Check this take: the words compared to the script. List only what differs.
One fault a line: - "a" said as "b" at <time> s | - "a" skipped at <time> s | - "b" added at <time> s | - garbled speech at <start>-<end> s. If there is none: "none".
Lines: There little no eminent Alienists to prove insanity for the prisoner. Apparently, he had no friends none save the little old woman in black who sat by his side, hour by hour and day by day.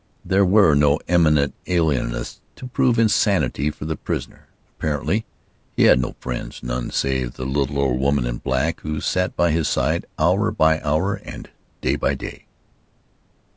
- "little" said as "were" at 0.4 s